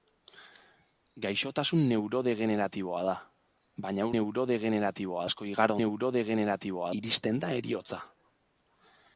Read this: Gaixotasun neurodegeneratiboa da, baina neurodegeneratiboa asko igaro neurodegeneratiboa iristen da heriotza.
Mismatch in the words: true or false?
false